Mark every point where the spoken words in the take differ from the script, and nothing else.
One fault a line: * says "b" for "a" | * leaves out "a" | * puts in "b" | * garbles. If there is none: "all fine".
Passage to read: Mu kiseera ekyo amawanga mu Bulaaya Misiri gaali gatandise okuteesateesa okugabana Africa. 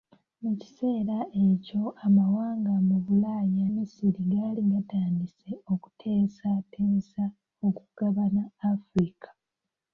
all fine